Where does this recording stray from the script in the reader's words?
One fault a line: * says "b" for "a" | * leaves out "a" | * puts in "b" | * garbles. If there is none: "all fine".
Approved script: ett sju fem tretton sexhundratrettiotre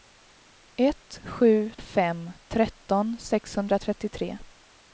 all fine